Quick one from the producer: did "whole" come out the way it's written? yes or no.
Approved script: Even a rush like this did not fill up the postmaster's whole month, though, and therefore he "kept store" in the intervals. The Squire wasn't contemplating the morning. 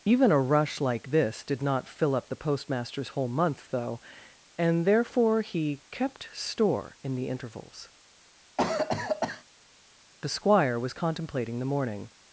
yes